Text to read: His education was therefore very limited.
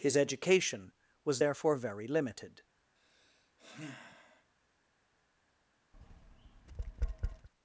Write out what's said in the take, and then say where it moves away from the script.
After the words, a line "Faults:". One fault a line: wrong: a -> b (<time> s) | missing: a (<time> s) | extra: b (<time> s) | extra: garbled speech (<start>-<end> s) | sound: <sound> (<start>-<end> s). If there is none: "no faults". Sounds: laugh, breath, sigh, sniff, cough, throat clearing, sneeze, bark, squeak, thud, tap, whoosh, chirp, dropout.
His education was therefore very limited.
Faults:
sound: sigh (3.0-4.5 s)
sound: tap (5.9-7.5 s)